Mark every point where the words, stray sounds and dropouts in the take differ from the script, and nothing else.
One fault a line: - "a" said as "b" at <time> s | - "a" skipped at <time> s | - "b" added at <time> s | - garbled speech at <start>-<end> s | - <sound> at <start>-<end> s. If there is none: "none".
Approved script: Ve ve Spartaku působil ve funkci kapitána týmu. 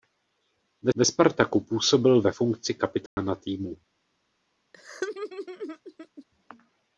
- dropout at 3.1-3.2 s
- laugh at 4.7-6.3 s